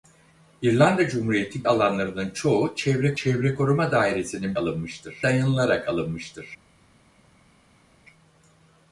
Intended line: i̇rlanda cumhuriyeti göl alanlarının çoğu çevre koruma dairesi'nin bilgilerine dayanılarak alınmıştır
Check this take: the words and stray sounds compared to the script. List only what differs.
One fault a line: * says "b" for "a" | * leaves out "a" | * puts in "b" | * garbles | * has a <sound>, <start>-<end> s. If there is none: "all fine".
* leaves out "göl"
* puts in "çevre"
* says "alınmıştır" for "bilgilerine"